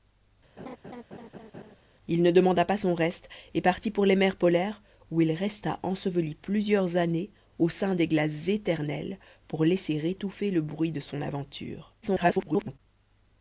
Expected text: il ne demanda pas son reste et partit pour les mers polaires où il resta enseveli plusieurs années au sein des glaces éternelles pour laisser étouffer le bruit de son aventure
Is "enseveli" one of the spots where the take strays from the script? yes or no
no